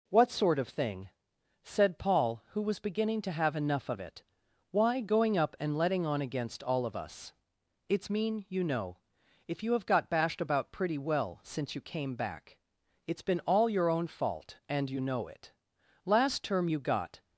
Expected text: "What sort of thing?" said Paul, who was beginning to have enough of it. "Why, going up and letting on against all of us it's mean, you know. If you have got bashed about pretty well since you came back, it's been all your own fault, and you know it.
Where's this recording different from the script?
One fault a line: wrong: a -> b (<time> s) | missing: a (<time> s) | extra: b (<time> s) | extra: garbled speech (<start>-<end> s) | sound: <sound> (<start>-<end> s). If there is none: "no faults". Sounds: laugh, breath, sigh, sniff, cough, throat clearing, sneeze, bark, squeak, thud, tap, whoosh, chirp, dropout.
extra: Last term you got (16.0 s)